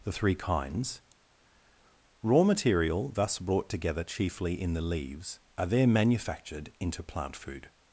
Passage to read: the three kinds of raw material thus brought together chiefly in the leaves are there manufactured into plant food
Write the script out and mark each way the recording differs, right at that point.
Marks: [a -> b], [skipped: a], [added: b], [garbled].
the three kinds [skipped: of] raw material thus brought together chiefly in the leaves are there manufactured into plant food